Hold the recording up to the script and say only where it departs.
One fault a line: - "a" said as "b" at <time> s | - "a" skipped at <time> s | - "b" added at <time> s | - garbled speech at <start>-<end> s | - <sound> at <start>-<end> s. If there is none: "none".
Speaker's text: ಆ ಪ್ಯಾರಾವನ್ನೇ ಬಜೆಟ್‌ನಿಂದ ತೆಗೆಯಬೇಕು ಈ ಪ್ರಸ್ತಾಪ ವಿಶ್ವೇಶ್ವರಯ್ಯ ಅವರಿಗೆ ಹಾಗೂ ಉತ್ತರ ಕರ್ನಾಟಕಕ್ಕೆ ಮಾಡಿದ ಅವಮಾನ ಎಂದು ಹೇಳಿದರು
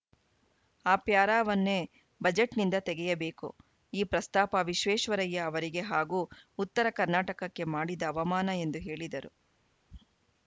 none